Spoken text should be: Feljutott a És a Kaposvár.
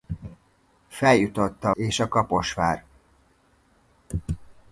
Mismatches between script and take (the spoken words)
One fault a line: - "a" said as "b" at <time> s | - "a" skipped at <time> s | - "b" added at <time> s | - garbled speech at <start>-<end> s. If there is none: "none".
none